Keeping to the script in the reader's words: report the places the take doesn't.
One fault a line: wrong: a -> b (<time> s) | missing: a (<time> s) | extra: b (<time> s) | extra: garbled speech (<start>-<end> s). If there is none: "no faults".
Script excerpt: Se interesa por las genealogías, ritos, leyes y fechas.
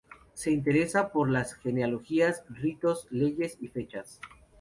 no faults